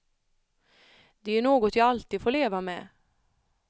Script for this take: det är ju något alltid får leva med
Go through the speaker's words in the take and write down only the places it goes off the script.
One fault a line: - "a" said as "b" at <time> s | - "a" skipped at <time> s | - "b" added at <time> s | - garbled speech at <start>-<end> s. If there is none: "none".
- "jag" added at 1.8 s